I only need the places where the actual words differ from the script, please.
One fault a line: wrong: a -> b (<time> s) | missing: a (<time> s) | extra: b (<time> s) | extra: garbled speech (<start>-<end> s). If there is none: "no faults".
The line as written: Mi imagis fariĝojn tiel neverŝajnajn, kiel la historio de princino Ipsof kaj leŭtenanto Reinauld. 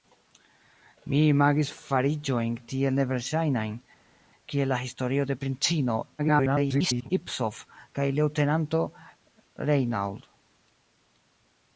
extra: garbled speech (6.2-7.1 s)